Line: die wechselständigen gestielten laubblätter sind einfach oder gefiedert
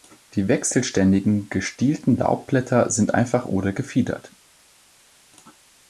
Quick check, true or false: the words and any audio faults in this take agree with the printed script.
true